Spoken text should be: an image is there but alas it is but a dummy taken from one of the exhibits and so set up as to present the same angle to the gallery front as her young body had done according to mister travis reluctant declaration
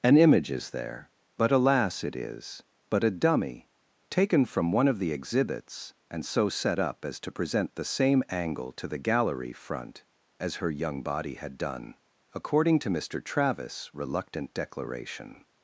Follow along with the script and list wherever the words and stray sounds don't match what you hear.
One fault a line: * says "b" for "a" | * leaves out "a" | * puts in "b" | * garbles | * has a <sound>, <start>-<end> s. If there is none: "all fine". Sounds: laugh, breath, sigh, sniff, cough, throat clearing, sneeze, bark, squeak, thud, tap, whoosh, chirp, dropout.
all fine